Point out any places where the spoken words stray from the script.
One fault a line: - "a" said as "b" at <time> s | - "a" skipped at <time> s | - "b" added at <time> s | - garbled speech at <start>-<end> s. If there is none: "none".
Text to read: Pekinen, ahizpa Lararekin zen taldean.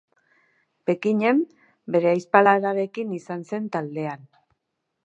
- "bere" added at 2.0 s
- "izan" added at 3.2 s